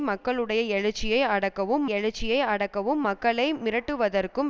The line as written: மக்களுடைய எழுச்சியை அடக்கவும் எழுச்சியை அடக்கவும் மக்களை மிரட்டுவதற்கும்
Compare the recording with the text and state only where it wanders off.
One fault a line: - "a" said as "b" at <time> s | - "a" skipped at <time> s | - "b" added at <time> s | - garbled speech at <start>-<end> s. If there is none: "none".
none